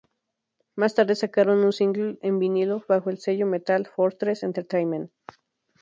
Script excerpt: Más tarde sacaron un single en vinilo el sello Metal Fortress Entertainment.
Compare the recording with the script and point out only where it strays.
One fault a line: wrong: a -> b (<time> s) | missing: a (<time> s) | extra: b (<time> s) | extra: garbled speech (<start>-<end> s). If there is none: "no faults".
extra: bajo (2.9 s)